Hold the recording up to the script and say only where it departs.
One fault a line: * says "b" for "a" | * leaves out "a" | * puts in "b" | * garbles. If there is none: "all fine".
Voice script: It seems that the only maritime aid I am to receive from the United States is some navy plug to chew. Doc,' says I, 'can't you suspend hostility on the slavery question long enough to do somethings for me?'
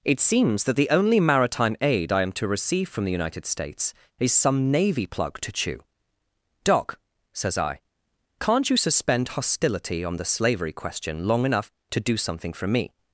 * says "something" for "somethings"